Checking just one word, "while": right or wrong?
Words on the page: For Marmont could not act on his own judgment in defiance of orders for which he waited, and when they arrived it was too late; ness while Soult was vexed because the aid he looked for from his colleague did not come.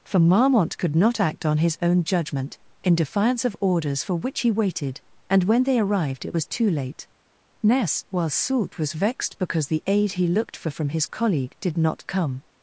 right